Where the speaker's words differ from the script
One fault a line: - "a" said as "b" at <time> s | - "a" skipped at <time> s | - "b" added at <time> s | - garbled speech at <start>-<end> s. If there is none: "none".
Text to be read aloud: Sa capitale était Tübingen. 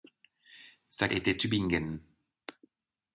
- "capitale" skipped at 1.1 s